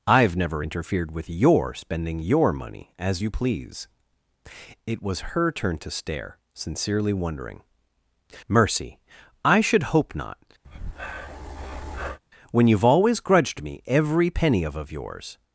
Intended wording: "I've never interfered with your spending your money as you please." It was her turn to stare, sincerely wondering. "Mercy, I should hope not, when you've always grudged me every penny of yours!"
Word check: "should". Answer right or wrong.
right